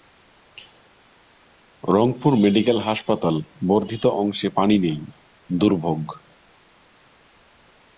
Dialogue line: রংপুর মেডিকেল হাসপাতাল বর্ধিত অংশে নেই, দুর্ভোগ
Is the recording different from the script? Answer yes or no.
yes